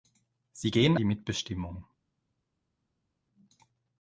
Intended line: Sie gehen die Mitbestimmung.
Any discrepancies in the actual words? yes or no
no